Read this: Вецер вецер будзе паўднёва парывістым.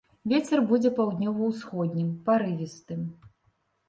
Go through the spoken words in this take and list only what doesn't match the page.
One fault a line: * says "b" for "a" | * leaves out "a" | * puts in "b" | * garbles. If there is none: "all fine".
* leaves out "вецер"
* puts in "ўсходнім"